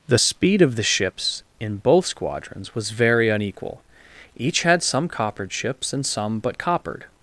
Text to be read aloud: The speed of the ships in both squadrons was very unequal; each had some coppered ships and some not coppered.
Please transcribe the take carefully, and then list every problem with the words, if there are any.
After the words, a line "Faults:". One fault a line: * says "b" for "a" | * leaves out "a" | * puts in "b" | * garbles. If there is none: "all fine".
The speed of the ships in both squadrons was very unequal; each had some coppered ships and some but coppered.
Faults:
* says "but" for "not"